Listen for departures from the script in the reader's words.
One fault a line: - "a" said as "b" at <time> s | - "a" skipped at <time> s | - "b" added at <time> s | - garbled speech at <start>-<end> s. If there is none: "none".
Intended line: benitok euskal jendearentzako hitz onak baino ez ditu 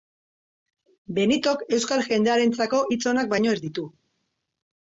none